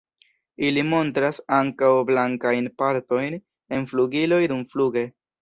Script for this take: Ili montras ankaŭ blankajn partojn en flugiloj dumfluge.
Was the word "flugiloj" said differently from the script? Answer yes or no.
no